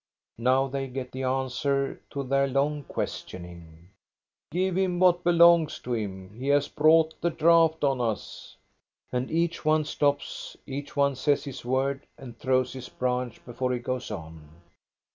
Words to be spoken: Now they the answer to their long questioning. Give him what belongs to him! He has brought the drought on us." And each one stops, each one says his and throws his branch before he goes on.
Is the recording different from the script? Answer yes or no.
yes